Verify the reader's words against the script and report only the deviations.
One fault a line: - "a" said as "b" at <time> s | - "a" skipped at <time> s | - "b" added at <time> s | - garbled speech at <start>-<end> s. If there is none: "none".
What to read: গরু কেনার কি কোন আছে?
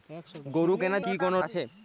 none